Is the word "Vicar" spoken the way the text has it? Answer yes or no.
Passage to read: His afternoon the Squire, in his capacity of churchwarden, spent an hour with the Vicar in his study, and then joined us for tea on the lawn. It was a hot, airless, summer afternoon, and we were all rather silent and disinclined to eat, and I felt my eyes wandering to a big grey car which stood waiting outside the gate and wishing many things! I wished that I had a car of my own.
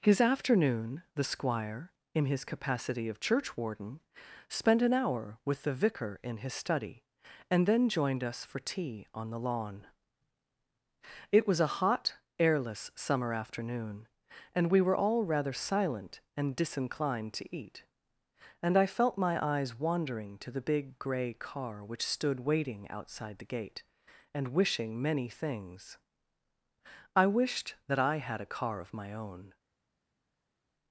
yes